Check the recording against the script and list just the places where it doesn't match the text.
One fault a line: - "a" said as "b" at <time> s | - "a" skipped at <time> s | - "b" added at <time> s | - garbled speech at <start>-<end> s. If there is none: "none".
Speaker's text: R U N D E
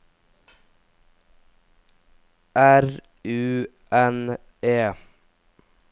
- "D" skipped at 4.4 s